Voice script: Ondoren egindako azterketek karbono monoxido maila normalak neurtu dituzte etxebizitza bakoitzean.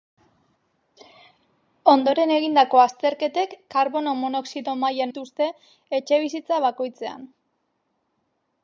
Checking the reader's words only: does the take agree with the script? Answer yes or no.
no